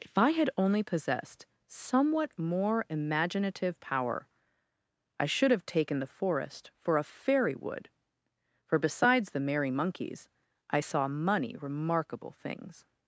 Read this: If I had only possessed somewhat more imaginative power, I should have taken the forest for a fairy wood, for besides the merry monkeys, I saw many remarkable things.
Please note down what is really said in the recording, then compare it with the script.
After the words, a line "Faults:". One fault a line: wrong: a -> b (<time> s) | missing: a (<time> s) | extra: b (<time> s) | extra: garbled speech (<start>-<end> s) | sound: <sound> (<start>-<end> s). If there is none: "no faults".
If I had only possessed somewhat more imaginative power, I should have taken the forest for a fairy wood, for besides the merry monkeys, I saw money remarkable things.
Faults:
wrong: many -> money (11.1 s)